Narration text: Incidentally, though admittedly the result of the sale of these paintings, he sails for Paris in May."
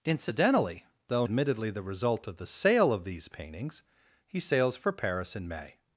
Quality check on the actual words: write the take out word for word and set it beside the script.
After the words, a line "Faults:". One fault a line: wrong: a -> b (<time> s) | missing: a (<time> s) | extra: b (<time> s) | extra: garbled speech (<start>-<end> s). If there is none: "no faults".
Incidentally, though admittedly the result of the sale of these paintings, he sails for Paris in May."
Faults:
no faults